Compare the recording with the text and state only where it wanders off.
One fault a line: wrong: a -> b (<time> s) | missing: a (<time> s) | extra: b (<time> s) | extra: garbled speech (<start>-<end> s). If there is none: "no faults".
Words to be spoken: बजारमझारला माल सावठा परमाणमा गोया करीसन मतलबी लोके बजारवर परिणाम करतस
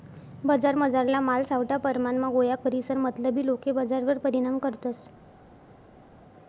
no faults